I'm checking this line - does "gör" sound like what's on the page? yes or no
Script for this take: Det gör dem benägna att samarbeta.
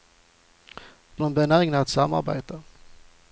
no